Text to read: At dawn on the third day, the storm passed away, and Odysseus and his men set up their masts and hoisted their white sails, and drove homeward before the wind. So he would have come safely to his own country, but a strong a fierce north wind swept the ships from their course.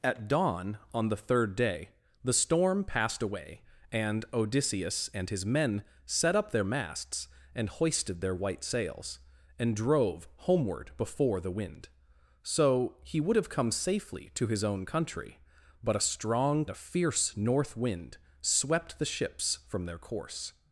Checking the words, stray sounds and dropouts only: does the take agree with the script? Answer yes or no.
yes